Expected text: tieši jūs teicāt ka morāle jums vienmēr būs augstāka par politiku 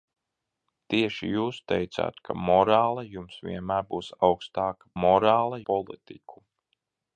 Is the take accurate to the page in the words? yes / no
no